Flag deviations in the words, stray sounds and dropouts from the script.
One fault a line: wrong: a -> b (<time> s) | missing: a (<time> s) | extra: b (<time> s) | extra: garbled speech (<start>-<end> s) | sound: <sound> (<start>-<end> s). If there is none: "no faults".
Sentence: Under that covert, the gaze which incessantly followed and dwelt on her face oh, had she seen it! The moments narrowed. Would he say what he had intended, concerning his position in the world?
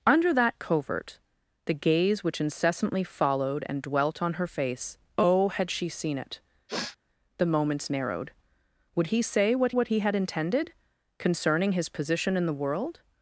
sound: sniff (6.7-7.0 s)
extra: what (9.7 s)